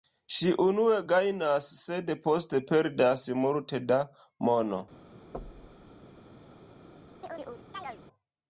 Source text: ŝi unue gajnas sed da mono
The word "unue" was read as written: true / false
true